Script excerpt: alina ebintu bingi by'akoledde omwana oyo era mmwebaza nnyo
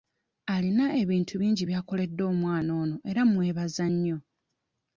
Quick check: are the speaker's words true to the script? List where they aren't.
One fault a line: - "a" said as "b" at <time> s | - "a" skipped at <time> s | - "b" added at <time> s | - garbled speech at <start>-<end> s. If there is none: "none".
- "oyo" said as "ono" at 2.8 s